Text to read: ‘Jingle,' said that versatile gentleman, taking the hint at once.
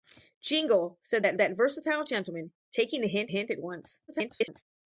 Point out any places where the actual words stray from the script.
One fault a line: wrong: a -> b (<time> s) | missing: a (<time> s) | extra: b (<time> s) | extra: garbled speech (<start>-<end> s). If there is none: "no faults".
extra: that (1.4 s)
extra: hint (3.3 s)
extra: garbled speech (4.1-4.6 s)